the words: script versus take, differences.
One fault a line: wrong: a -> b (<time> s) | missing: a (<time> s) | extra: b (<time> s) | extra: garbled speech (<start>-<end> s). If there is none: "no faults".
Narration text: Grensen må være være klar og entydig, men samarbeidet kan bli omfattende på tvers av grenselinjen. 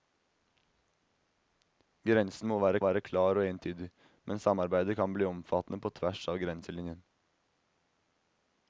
no faults